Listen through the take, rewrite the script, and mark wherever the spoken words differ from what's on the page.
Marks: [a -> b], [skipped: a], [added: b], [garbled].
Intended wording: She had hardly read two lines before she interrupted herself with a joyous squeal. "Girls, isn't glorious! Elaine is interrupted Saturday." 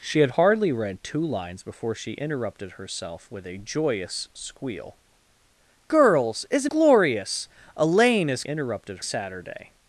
She had hardly read two lines before she interrupted herself with a joyous squeal. "Girls, isn't glorious! Elaine is interrupted Saturday."